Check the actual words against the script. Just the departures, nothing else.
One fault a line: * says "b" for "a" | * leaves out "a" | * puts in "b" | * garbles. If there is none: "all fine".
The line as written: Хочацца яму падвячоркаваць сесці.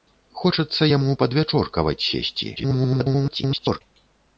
* garbles